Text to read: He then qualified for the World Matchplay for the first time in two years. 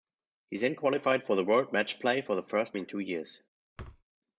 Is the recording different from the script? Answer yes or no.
yes